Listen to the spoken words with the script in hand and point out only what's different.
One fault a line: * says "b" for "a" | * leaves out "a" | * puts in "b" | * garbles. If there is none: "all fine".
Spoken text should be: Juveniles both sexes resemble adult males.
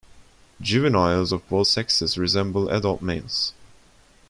* puts in "of"